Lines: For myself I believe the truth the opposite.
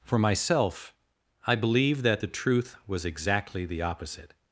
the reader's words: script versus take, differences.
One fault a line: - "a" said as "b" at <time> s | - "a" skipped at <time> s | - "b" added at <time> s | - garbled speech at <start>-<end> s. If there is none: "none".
- "that" added at 2.0 s
- "was exactly" added at 2.9 s